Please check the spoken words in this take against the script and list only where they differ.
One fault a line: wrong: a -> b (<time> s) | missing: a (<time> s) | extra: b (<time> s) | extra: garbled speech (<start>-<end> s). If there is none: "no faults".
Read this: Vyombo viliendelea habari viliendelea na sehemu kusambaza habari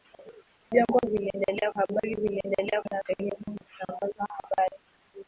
no faults